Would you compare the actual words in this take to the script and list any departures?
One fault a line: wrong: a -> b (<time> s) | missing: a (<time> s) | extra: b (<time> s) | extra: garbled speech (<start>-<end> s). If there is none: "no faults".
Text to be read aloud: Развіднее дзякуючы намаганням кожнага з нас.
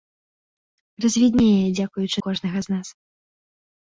missing: намаганням (2.2 s)